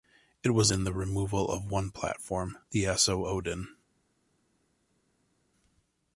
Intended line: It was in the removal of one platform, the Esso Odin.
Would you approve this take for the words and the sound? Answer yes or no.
yes